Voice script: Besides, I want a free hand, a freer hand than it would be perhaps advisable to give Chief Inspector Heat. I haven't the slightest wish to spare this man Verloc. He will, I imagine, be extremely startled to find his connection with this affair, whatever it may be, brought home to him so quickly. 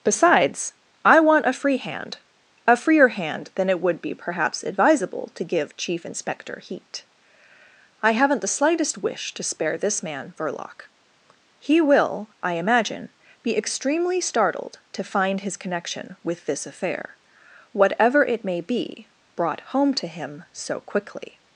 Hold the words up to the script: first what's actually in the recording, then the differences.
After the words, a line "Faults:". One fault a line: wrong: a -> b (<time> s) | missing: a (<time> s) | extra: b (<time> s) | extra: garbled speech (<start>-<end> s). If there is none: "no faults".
Besides, I want a free hand, a freer hand than it would be perhaps advisable to give Chief Inspector Heat. I haven't the slightest wish to spare this man Verloc. He will, I imagine, be extremely startled to find his connection with this affair, whatever it may be, brought home to him so quickly.
Faults:
no faults